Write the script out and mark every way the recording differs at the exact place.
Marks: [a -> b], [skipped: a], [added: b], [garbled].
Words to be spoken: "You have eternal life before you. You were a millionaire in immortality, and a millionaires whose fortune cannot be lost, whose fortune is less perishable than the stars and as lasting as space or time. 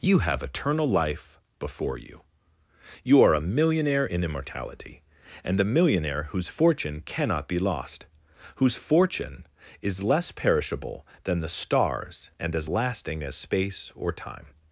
"You have eternal life before you. You [were -> are] a millionaire in immortality, and a [millionaires -> millionaire] whose fortune cannot be lost, whose fortune is less perishable than the stars and as lasting as space or time.